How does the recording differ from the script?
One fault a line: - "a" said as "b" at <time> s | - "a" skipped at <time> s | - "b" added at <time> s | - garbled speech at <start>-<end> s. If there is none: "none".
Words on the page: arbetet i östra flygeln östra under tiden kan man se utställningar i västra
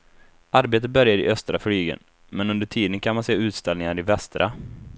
- "börjar" added at 0.9 s
- "östra" said as "men" at 2.3 s